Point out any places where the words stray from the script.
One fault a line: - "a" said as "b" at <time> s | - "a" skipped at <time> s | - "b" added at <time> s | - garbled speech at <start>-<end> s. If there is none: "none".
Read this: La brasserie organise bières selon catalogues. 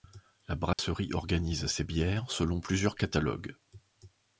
- "ses" added at 1.7 s
- "plusieurs" added at 2.6 s